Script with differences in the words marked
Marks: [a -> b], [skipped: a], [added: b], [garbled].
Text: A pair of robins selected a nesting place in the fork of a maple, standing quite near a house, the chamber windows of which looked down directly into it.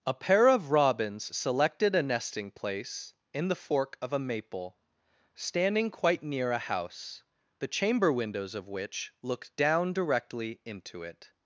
A pair of robins selected a nesting place in the fork of a maple, standing quite near a house, the chamber windows of which looked down directly into it.